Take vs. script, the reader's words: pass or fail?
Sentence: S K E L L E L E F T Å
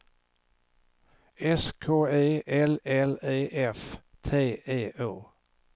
fail